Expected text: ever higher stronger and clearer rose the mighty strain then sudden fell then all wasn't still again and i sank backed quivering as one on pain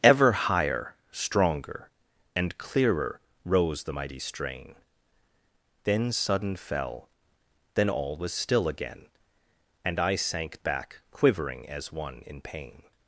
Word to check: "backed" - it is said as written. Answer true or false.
false